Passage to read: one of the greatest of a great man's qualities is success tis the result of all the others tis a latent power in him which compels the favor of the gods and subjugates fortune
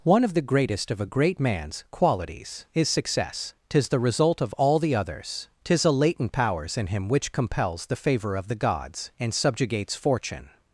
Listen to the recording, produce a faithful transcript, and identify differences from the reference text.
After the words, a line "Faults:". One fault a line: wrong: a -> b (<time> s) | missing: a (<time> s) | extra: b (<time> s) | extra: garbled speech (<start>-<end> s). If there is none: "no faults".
one of the greatest of a great man's qualities is success tis the result of all the others tis a latent powers in him which compels the favor of the gods and subjugates fortune
Faults:
wrong: power -> powers (6.3 s)